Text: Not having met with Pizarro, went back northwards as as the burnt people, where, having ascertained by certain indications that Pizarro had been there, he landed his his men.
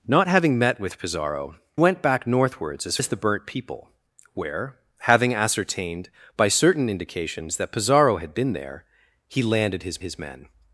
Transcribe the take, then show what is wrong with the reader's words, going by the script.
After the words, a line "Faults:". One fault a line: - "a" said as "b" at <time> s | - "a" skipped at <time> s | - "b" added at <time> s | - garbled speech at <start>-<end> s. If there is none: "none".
Not having met with Pizarro, went back northwards as as the burnt people, where, having ascertained by certain indications that Pizarro had been there, he landed his his men.
Faults:
none